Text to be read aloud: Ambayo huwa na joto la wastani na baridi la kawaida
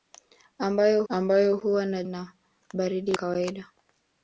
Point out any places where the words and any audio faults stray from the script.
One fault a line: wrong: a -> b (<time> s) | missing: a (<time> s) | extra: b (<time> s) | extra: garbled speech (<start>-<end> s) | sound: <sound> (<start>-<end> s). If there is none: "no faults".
extra: ambayo (1.1 s)
missing: joto la wastani (2.0 s)
missing: la (3.1 s)